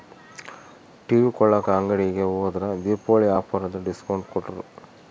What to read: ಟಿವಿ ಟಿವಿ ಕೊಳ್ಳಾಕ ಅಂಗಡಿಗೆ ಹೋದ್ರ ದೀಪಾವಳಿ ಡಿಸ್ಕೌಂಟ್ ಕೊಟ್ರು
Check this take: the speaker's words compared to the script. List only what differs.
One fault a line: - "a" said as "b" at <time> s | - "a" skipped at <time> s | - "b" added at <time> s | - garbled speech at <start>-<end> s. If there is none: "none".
- "ಟಿವಿ" skipped at 1.3 s
- "ಆಫರ್ ಅಂತ" added at 3.4 s